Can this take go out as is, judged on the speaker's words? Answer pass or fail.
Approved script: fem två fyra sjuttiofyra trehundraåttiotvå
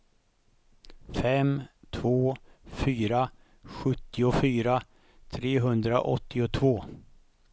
pass